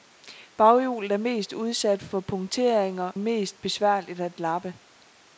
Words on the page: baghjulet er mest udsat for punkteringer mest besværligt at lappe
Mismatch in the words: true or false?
false